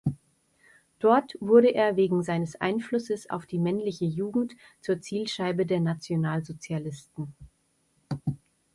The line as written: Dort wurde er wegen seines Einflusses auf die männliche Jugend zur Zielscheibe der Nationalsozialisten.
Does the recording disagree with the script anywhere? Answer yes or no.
no